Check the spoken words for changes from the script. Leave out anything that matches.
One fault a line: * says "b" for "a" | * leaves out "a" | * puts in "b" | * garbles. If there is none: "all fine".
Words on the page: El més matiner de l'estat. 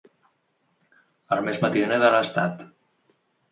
all fine